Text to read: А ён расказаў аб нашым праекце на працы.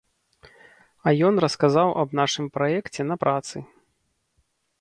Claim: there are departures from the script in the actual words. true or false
false